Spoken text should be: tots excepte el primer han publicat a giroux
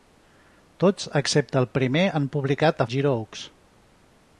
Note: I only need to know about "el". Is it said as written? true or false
true